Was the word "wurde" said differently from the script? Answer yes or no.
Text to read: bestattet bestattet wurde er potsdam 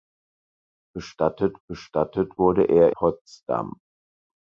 no